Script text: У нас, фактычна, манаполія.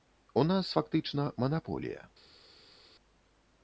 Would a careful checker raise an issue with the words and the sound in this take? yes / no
no